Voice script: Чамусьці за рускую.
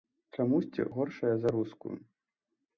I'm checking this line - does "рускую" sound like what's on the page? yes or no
yes